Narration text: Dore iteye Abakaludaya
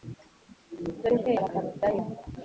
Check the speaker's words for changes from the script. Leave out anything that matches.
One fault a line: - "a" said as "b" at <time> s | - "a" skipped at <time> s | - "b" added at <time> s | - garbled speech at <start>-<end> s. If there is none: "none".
none